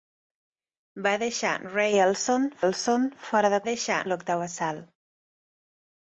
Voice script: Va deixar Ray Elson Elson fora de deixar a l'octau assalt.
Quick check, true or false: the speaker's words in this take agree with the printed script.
true